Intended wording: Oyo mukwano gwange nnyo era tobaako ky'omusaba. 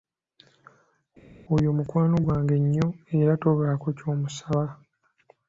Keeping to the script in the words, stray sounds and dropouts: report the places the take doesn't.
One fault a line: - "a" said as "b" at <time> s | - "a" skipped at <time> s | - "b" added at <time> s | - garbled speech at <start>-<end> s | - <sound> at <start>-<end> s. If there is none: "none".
none